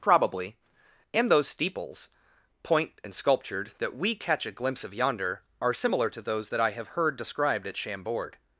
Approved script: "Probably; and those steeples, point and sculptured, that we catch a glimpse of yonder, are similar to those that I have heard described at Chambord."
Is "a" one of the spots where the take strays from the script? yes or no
no